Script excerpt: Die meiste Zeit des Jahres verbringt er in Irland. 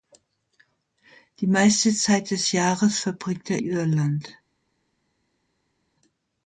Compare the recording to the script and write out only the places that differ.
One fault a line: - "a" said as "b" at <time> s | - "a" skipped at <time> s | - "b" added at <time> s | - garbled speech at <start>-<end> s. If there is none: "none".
- "in" skipped at 3.6 s